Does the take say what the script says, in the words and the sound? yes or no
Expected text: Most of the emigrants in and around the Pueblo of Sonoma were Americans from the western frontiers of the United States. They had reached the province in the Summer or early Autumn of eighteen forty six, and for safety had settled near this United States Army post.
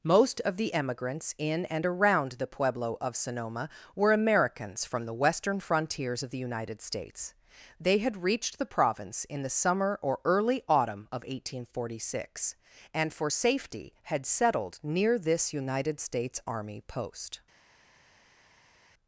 yes